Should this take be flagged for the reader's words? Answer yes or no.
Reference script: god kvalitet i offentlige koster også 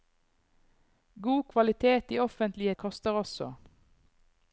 no